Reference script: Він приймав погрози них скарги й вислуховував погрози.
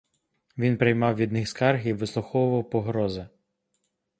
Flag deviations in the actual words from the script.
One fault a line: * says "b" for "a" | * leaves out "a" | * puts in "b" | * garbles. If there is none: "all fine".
* says "від" for "погрози"